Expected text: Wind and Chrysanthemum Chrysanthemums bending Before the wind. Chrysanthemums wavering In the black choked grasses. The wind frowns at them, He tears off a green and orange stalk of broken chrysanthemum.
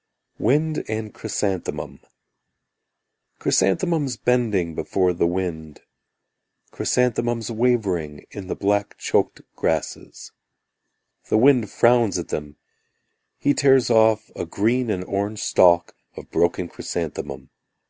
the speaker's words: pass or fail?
pass